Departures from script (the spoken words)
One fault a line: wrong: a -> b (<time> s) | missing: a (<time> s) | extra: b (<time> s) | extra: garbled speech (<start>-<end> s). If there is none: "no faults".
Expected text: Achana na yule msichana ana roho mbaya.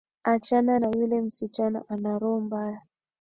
no faults